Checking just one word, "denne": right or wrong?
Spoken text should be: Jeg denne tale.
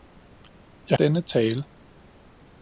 right